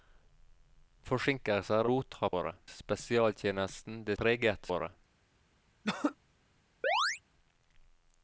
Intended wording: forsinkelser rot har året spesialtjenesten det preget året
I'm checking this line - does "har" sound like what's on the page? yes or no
yes